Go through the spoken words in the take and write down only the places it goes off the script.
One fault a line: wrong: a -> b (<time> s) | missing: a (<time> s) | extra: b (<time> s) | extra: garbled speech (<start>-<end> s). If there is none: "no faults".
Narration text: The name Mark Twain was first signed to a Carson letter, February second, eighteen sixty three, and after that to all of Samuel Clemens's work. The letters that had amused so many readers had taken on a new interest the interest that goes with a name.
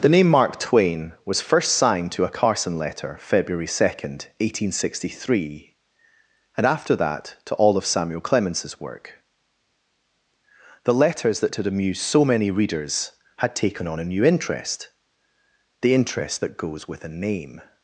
no faults